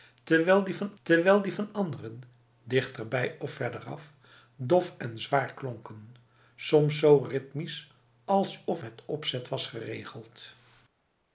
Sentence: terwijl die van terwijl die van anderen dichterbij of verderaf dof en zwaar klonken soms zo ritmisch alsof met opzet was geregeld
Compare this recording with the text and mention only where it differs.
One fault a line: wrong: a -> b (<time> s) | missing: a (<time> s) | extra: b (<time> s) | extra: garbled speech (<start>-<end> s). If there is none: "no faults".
no faults